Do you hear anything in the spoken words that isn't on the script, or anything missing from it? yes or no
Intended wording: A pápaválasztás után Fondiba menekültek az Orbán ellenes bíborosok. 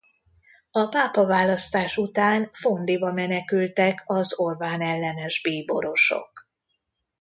no